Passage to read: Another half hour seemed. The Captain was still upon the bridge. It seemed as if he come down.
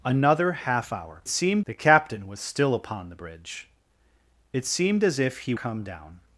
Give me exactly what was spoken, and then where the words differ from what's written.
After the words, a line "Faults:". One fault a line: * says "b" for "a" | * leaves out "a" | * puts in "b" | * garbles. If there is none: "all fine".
Another half hour seemed. The Captain was still upon the bridge. It seemed as if he come down.
Faults:
all fine